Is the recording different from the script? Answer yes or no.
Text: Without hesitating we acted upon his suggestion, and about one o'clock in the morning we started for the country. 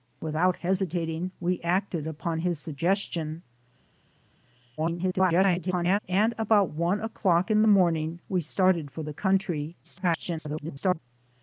yes